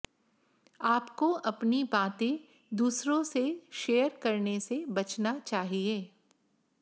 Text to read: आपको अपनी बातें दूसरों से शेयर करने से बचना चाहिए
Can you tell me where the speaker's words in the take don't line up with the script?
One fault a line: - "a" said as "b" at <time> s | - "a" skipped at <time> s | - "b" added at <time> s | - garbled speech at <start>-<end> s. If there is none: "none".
none